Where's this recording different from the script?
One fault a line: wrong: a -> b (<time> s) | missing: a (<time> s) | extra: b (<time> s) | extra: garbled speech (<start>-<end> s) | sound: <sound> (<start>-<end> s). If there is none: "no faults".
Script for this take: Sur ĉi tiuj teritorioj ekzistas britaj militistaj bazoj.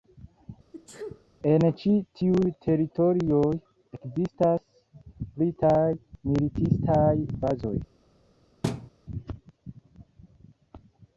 sound: sneeze (0.7-1.3 s)
wrong: Sur -> En (1.5 s)
sound: thud (8.6-8.9 s)